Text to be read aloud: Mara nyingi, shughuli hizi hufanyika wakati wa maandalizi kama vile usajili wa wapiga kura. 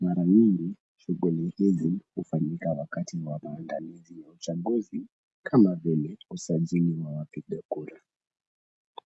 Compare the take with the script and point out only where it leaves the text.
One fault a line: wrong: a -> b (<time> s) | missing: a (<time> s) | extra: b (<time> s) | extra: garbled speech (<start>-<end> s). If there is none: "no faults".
extra: ya uchaguzi (4.2 s)